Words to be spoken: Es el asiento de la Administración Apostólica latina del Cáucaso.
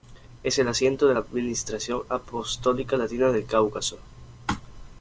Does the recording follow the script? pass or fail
pass